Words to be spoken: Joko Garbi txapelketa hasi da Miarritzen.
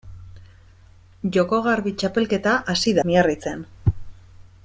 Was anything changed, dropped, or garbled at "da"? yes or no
yes